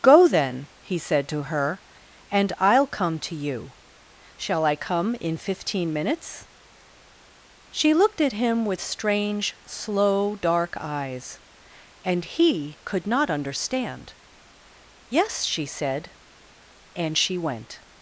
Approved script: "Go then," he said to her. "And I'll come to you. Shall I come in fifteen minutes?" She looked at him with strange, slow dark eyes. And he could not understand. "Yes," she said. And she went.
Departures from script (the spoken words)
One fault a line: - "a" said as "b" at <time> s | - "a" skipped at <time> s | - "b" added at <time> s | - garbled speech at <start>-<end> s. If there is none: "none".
none